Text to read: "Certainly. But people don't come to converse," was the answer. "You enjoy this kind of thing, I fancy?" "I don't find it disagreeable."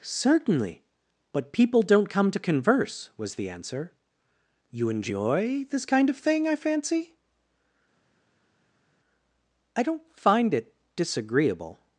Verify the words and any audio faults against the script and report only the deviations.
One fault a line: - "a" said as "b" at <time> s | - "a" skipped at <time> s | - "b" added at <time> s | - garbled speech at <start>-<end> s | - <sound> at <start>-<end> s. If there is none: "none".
none